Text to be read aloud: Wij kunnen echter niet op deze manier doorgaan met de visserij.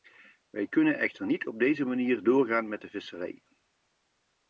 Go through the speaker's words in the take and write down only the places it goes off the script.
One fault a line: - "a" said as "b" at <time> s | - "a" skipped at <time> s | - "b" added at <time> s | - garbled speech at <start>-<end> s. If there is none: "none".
none